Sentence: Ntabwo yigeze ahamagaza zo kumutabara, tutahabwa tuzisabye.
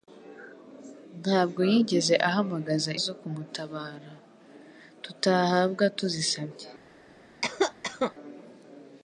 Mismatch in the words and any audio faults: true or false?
true